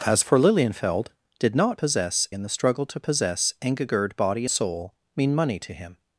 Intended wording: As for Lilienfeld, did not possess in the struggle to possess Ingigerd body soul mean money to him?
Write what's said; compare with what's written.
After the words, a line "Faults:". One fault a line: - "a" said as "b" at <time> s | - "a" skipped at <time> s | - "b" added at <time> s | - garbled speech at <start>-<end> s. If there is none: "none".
As for Lilienfeld, did not possess in the struggle to possess Ingigerd body soul mean money to him?
Faults:
none